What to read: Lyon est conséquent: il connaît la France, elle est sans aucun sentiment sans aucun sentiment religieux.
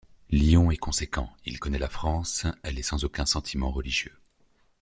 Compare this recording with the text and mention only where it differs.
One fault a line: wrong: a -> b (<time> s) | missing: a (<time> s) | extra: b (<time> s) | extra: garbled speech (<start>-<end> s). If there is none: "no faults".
missing: sans aucun sentiment (3.7 s)